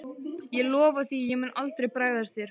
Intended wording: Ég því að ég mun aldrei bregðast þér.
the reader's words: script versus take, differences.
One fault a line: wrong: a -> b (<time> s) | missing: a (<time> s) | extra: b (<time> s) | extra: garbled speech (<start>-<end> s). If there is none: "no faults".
extra: lofa (0.7 s)